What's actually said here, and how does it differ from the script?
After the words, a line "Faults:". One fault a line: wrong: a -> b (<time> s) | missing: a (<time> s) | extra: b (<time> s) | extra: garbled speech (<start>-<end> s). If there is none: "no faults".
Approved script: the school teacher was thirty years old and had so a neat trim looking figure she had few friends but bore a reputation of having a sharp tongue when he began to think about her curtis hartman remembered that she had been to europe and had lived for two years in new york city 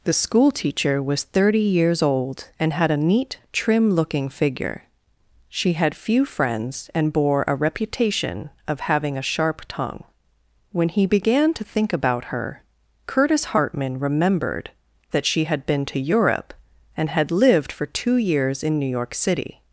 the school teacher was thirty years old and had a neat trim looking figure she had few friends and bore a reputation of having a sharp tongue when he began to think about her curtis hartman remembered that she had been to europe and had lived for two years in new york city
Faults:
missing: so (2.9 s)
wrong: but -> and (7.0 s)